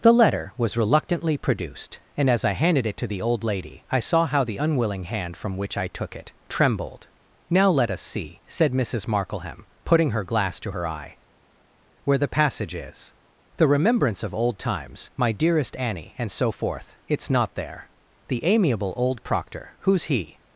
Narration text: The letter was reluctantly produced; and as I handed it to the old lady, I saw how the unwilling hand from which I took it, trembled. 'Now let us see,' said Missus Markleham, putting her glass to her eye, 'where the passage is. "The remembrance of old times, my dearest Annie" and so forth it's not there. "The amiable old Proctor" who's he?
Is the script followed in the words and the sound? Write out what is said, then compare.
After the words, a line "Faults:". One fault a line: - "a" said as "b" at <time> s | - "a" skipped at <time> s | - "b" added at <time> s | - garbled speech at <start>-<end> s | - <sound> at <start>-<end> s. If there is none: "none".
The letter was reluctantly produced; and as I handed it to the old lady, I saw how the unwilling hand from which I took it, trembled. 'Now let us see,' said Missus Markleham, putting her glass to her eye, 'where the passage is. "The remembrance of old times, my dearest Annie" and so forth it's not there. "The amiable old Proctor" who's he?
Faults:
none